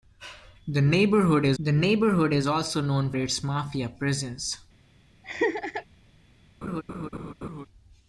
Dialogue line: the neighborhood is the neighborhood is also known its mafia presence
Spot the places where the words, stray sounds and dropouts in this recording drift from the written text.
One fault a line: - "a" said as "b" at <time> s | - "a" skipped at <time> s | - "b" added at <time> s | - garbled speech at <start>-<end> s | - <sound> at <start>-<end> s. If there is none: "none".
- laugh at 5.2-5.8 s
- laugh at 6.6-7.7 s